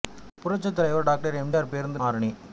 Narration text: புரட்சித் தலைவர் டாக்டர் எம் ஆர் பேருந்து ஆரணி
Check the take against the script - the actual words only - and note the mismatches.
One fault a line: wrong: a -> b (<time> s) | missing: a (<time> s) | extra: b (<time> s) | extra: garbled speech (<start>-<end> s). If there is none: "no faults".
no faults